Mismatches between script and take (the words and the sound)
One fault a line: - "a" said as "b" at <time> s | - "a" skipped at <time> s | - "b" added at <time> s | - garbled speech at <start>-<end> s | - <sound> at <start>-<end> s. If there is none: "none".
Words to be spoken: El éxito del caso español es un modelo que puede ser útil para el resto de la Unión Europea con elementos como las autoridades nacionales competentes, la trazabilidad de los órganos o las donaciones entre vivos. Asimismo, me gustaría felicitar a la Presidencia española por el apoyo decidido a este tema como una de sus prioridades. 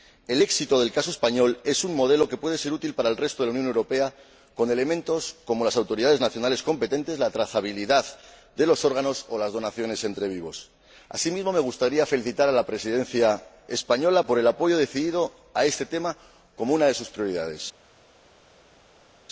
none